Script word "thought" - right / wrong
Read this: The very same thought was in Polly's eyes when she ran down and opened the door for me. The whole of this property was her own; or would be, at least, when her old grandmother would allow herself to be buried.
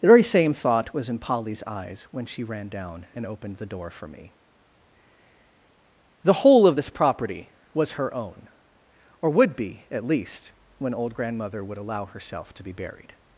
right